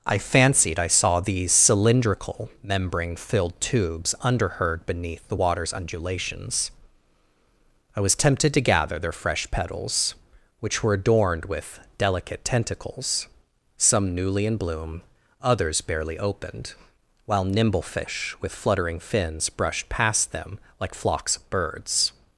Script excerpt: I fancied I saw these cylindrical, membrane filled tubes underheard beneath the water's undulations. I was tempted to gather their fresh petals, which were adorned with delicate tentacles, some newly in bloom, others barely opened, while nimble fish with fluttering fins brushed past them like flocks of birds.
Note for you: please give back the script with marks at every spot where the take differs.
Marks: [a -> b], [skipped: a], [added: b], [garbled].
I fancied I saw these cylindrical, membrane filled tubes underheard beneath the water's undulations. I was tempted to gather their fresh petals, which were adorned with delicate tentacles, some newly in bloom, others barely opened, while nimble fish with fluttering fins brushed past them like flocks of birds.